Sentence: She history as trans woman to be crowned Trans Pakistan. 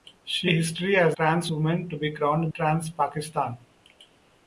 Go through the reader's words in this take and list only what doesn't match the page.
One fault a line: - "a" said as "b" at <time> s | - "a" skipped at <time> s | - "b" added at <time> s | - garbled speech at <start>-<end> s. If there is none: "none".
none